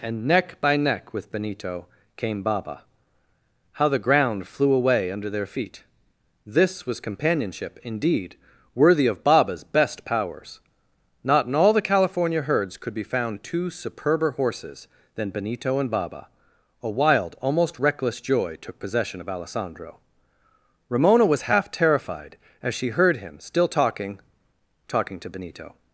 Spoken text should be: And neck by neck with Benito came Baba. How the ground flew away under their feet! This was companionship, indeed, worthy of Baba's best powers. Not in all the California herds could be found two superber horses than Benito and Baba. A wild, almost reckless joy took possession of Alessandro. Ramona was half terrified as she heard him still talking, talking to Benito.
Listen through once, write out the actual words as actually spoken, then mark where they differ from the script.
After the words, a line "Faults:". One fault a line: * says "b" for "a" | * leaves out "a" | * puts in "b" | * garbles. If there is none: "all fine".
And neck by neck with Benito came Baba. How the ground flew away under their feet! This was companionship, indeed, worthy of Baba's best powers. Not in all the California herds could be found two superber horses than Benito and Baba. A wild, almost reckless joy took possession of Alessandro. Ramona was half terrified as she heard him still talking, talking to Benito.
Faults:
all fine